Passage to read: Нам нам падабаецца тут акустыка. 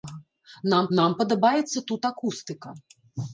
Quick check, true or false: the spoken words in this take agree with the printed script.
true